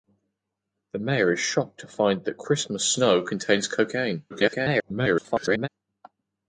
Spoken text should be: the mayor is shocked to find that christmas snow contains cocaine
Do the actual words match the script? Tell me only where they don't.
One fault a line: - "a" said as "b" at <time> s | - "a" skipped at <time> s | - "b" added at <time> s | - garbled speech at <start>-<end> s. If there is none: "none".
- garbled speech at 4.3-5.7 s